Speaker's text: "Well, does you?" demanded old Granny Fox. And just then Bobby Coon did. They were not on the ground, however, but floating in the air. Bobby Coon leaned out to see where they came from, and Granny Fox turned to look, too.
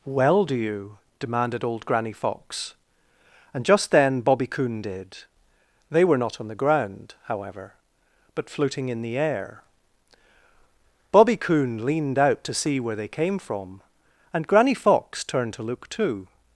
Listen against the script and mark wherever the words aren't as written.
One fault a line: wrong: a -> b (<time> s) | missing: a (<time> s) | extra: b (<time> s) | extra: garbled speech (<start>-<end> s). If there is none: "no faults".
wrong: does -> do (0.5 s)